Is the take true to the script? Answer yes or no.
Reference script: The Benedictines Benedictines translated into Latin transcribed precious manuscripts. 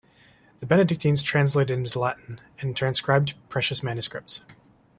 no